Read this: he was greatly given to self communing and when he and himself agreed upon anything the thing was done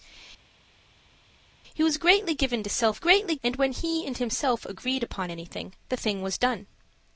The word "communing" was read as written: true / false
false